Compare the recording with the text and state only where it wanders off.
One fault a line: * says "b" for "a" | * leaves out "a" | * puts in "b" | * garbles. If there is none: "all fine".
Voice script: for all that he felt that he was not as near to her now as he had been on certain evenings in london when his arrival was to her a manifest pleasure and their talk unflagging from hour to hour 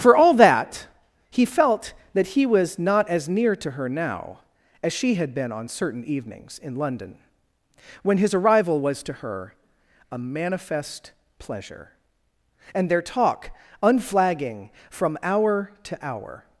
* says "she" for "he"